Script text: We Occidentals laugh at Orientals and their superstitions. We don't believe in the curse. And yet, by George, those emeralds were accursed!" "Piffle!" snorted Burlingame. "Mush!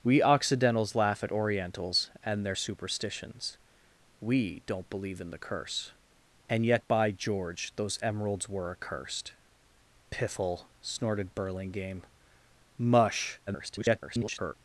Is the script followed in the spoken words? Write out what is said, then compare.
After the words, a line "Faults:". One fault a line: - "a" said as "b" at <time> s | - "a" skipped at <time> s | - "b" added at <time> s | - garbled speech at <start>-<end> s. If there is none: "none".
We Occidentals laugh at Orientals and their superstitions. We don't believe in the curse. And yet, by George, those emeralds were accursed!" "Piffle!" snorted Burlingame. "Mush! [garbled]
Faults:
- garbled speech at 13.5-14.5 s